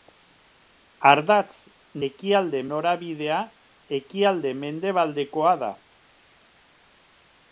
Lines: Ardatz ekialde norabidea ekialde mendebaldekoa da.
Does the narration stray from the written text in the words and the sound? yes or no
no